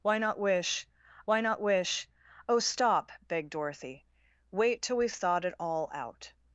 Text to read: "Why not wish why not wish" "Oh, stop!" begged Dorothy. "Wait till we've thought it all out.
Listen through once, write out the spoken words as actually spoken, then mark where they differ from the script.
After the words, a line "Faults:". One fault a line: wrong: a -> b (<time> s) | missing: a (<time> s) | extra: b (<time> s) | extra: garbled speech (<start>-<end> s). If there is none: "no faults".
"Why not wish why not wish" "Oh, stop!" begged Dorothy. "Wait till we've thought it all out.
Faults:
no faults